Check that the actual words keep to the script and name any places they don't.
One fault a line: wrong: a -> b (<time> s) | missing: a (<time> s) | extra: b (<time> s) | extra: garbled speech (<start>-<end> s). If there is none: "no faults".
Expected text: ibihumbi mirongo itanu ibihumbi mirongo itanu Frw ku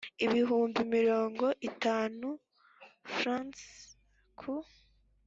missing: ibihumbi mirongo itanu (2.3 s)